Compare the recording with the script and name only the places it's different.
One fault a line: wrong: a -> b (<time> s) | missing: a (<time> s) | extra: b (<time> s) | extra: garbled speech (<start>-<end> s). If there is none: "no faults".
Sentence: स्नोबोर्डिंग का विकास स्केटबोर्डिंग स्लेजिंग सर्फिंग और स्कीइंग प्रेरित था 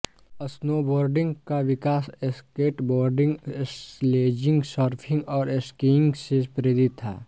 extra: से (6.3 s)